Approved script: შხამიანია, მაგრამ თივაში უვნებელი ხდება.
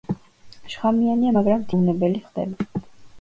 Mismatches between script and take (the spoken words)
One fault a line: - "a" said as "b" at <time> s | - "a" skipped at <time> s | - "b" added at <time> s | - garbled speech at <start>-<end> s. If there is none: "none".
- "თივაში" skipped at 1.7 s